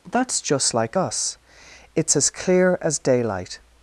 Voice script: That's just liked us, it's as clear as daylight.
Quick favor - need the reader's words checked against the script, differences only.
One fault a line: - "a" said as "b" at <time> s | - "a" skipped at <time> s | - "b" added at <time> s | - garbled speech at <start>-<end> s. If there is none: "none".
- "liked" said as "like" at 0.7 s